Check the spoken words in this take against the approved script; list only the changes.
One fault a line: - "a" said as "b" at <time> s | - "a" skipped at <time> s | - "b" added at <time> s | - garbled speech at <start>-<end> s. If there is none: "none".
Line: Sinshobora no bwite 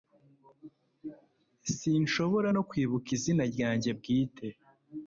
- "kwibuka izina ryanjye" added at 2.7 s